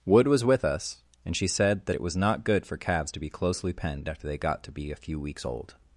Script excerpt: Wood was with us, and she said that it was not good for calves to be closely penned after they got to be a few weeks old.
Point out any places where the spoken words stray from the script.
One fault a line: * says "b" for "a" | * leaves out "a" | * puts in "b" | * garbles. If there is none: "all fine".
all fine